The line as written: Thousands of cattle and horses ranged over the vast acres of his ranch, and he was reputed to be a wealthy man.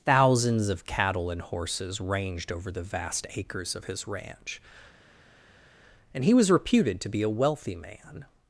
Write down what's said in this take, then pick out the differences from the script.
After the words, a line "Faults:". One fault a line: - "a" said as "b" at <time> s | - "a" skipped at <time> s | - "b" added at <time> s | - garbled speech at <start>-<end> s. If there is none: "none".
Thousands of cattle and horses ranged over the vast acres of his ranch, and he was reputed to be a wealthy man.
Faults:
none